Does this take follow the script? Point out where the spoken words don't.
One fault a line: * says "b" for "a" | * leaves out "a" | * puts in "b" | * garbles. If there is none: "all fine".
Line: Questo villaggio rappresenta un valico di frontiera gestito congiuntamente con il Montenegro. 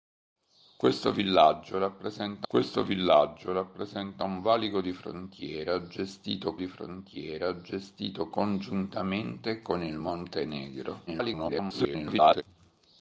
* puts in "questo villaggio rappresenta"
* puts in "di frontiera gestito"
* garbles